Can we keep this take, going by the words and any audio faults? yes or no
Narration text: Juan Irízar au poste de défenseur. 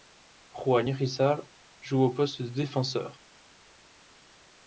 no